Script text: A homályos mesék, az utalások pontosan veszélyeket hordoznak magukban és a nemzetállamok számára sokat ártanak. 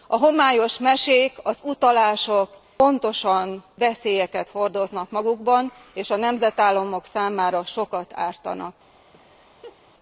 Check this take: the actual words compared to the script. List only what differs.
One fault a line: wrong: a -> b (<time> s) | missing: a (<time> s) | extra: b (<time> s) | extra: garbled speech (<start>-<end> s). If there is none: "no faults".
no faults